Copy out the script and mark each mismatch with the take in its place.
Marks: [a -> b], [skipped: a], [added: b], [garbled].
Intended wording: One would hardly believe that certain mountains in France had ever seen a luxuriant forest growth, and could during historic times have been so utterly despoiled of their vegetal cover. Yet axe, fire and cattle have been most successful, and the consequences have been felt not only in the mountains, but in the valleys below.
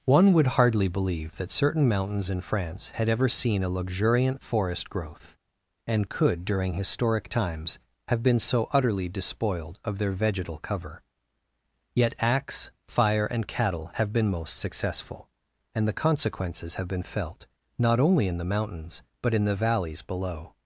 One would hardly believe that certain mountains in France had ever seen a luxuriant forest growth, and could during historic times have been so utterly despoiled of their vegetal cover. Yet axe, fire and cattle have been most successful, and the consequences have been felt not only in the mountains, but in the valleys below.